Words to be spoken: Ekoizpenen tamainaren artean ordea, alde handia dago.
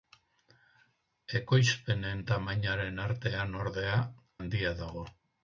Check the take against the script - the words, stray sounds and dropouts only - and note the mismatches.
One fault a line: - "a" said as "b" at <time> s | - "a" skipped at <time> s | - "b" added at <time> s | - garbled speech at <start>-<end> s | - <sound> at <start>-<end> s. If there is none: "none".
- "alde" skipped at 4.0 s